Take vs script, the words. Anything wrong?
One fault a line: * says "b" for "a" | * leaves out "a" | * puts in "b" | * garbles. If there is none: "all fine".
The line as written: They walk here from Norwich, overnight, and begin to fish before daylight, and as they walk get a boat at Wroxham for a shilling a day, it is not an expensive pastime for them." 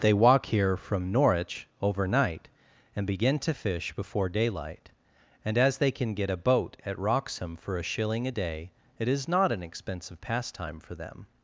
* says "can" for "walk"